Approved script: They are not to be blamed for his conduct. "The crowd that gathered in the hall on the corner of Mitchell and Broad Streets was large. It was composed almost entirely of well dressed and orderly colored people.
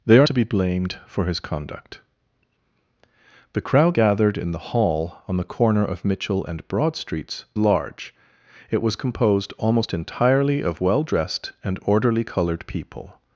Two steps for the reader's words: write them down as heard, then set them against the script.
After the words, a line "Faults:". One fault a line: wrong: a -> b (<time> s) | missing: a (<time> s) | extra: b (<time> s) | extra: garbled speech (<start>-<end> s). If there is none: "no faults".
They are to be blamed for his conduct. "The crowd gathered in the hall on the corner of Mitchell and Broad Streets large. It was composed almost entirely of well dressed and orderly colored people.
Faults:
missing: not (0.3 s)
missing: that (4.0 s)
missing: was (7.4 s)